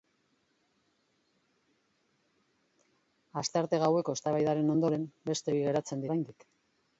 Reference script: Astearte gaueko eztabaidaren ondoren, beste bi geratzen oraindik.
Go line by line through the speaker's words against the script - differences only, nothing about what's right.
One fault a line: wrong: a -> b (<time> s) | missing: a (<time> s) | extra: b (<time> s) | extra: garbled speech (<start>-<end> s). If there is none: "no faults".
no faults